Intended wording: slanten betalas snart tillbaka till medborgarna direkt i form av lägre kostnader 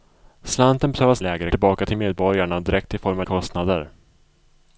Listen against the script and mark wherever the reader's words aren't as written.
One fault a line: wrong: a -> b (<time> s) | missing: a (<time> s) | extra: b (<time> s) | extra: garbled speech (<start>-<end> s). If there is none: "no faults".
wrong: snart -> lägre (1.2 s)
missing: lägre (3.2 s)